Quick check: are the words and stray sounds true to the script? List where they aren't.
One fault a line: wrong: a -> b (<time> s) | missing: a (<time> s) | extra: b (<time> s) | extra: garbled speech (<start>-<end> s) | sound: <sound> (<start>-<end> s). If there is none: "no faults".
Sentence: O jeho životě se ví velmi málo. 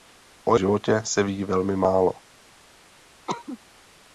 missing: jeho (0.6 s)
sound: cough (3.3-3.6 s)